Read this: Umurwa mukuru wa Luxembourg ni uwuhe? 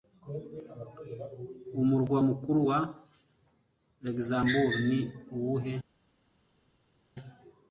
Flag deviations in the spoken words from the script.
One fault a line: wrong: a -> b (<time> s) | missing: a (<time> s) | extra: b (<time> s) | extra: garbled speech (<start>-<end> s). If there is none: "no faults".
no faults